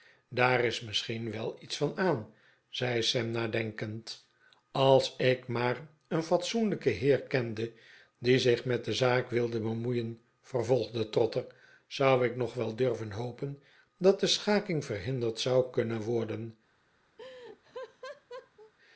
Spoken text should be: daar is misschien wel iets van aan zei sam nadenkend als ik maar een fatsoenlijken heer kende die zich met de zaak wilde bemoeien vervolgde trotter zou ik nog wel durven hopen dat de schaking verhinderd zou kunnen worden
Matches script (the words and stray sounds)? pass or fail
fail